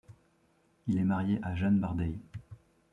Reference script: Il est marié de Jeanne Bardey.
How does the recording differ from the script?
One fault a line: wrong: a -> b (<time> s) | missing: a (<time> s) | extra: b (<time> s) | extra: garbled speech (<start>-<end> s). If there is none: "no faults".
wrong: de -> à (1.4 s)